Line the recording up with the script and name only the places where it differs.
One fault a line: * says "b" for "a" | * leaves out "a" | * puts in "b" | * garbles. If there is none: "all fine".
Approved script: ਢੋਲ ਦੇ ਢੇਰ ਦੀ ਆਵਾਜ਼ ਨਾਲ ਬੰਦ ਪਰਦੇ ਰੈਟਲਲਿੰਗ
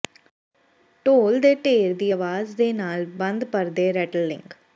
* puts in "ਦੇ"